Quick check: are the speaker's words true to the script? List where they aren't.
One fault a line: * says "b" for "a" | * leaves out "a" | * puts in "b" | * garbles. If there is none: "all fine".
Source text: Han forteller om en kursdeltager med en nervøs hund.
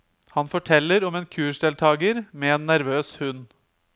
all fine